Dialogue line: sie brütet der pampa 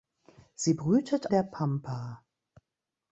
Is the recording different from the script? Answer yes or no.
no